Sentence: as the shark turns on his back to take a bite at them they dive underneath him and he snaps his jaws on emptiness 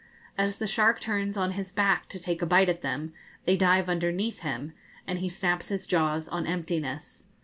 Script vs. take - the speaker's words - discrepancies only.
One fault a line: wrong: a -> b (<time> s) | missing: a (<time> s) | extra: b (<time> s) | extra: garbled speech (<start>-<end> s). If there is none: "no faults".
no faults